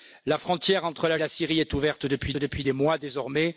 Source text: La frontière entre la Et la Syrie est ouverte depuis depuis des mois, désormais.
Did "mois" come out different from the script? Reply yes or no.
no